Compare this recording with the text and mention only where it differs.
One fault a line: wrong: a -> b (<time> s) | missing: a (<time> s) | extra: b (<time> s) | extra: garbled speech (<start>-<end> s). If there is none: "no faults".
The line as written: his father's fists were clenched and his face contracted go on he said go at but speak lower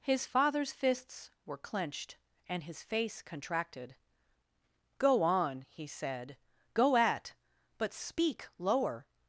no faults